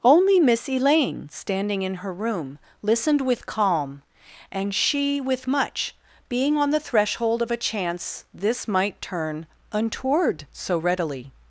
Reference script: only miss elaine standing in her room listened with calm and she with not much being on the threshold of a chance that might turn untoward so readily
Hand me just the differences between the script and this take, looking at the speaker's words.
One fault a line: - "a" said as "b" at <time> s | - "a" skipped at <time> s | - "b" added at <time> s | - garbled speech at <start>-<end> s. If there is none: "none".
- "not" skipped at 5.5 s
- "that" said as "this" at 8.3 s